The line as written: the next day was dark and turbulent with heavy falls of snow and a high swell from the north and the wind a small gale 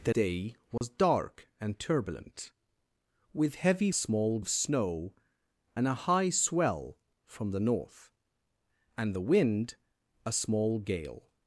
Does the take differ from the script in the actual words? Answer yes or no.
yes